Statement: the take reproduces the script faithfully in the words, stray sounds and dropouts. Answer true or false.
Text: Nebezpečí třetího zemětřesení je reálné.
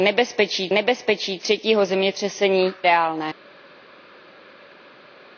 false